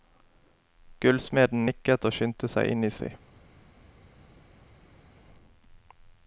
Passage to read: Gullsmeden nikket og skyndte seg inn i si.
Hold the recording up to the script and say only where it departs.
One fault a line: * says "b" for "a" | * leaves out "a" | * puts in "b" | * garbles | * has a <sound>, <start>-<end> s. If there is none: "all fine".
all fine